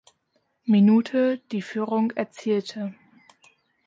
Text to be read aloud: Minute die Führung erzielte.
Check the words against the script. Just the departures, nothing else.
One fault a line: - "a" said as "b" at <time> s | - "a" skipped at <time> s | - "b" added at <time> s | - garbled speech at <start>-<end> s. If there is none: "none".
none